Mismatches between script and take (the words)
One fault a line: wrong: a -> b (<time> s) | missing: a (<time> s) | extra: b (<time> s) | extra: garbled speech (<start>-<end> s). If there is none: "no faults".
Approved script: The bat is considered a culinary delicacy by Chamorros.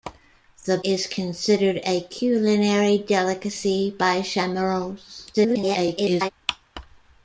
missing: bat (0.8 s)
extra: garbled speech (5.3-6.3 s)